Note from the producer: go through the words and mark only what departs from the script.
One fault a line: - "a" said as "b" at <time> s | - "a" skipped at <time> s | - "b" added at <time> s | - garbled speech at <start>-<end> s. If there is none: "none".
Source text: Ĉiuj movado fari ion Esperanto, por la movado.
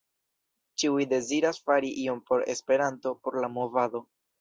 - "movado" said as "deziras" at 1.1 s
- "por" added at 2.3 s